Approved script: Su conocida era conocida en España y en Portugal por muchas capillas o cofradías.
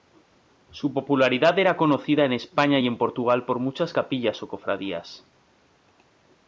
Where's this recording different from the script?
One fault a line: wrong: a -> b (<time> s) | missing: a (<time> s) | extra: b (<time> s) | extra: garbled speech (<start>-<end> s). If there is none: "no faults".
wrong: conocida -> popularidad (0.9 s)